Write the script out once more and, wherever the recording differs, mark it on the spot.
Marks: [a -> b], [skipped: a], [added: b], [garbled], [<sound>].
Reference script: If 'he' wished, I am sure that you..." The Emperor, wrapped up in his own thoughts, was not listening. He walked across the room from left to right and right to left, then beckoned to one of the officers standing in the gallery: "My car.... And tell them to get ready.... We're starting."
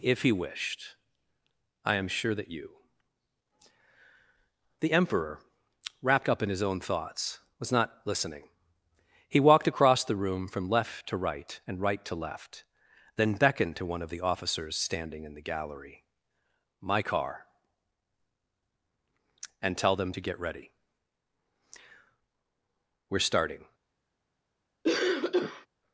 If 'he' wished, I am sure that you..." The Emperor, wrapped up in his own thoughts, was not listening. He walked across the room from left to right and right to left, then beckoned to one of the officers standing in the gallery: "My car.... And tell them to get ready.... We're starting." [cough]